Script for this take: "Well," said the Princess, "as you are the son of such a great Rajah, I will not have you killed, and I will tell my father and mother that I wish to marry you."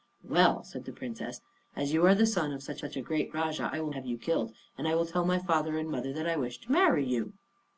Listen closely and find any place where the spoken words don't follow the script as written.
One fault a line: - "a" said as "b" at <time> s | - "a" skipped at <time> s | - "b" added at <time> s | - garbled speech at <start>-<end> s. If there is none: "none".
- "such" added at 2.8 s
- "not" skipped at 3.9 s